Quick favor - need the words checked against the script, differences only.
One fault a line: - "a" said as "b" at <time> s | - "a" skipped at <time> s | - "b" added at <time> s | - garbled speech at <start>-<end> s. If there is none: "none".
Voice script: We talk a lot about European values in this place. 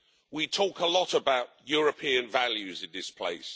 none